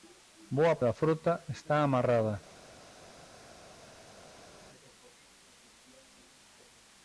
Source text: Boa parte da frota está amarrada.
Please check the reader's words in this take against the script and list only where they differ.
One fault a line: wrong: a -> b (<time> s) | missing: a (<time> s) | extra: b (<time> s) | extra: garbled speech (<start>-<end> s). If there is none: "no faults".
missing: parte (0.8 s)